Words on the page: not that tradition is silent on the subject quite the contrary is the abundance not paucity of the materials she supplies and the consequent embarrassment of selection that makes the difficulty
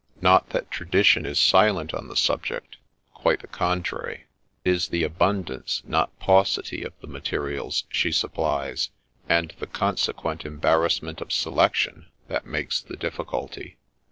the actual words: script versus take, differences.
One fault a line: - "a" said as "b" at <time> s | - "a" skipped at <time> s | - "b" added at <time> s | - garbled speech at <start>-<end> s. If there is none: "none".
none